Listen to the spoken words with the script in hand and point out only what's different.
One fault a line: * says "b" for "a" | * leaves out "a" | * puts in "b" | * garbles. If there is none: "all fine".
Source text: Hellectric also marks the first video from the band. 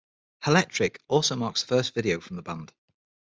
all fine